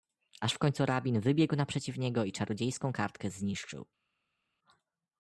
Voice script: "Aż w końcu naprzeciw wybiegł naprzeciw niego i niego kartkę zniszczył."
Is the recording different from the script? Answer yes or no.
yes